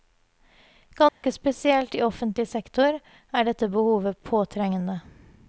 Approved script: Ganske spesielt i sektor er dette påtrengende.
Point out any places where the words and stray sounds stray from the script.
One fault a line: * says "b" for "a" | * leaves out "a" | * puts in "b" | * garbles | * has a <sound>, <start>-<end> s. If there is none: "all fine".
* has a dropout, 1.1-1.2 s
* puts in "offentlig"
* puts in "behovet"